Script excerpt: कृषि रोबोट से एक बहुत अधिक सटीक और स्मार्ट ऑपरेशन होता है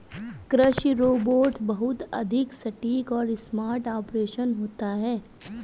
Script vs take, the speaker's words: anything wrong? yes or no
yes